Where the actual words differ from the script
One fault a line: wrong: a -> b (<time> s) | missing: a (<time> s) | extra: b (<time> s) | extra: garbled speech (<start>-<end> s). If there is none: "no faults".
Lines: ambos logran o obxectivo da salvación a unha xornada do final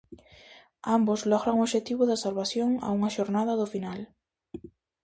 no faults